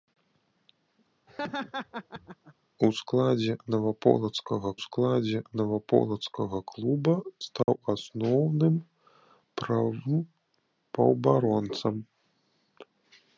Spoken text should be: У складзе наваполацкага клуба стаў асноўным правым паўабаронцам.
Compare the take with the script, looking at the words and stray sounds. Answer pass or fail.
fail